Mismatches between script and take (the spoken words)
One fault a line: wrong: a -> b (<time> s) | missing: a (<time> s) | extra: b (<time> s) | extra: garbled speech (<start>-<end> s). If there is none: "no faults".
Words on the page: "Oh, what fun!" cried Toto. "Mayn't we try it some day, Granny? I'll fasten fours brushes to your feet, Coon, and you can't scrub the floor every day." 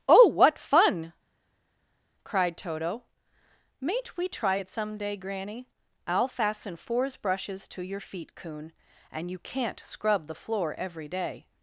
no faults